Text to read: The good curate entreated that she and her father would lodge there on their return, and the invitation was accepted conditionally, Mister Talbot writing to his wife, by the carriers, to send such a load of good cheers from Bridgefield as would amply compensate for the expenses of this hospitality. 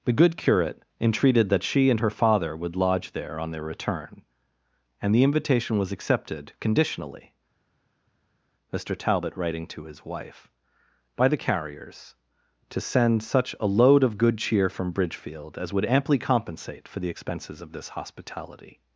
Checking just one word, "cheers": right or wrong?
wrong